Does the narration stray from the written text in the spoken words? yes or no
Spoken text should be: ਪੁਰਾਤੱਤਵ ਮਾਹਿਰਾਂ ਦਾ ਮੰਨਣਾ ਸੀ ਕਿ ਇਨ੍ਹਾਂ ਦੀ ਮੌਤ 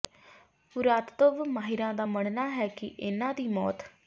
yes